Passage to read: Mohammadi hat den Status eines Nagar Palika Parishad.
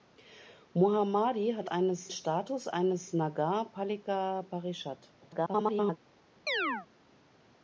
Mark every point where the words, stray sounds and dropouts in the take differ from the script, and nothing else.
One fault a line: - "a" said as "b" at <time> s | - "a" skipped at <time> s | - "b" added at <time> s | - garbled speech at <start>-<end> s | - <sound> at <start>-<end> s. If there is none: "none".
- "den" said as "eines" at 1.6 s
- garbled speech at 5.2-6.0 s
- chirp at 6.5-6.9 s